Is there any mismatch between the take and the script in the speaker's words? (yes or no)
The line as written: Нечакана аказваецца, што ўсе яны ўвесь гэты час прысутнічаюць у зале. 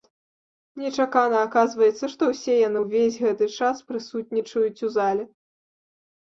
no